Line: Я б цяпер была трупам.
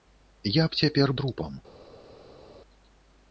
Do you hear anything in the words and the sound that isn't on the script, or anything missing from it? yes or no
yes